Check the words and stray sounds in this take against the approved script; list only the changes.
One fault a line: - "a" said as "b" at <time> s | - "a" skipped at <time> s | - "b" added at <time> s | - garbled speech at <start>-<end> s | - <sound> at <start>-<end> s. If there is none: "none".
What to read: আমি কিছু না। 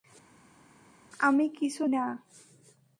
none